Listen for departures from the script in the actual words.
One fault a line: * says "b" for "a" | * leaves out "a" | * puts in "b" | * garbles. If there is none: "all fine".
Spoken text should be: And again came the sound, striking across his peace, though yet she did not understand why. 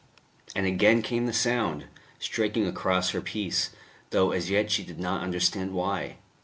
* says "her" for "his"
* puts in "as"